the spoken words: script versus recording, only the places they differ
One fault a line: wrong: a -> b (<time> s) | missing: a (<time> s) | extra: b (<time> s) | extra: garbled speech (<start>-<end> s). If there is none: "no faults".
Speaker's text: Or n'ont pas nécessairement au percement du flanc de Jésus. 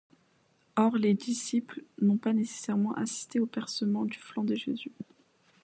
extra: les disciples (1.0 s)
extra: assisté (2.9 s)